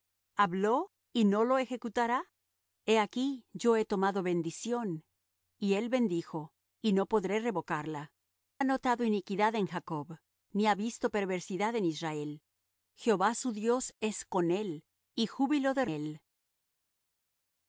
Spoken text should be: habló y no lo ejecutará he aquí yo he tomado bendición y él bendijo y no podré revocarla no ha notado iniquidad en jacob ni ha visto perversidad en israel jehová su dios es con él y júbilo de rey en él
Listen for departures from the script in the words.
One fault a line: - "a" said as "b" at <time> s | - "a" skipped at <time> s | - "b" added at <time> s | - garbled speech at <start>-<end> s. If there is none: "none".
- "no" skipped at 8.1 s
- "rey en" skipped at 15.9 s